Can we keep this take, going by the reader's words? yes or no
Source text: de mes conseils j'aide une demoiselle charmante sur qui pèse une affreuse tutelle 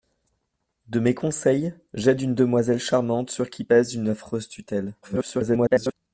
no